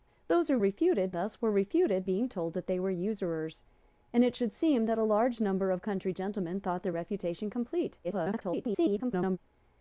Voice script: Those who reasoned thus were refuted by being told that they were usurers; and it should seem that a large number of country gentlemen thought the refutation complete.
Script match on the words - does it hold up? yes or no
no